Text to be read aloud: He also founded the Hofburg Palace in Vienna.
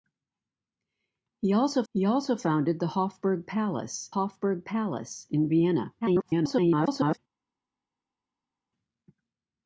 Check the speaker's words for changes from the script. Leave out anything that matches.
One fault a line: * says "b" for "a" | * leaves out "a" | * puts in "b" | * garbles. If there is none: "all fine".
* puts in "he also"
* puts in "Hofburg Palace"
* garbles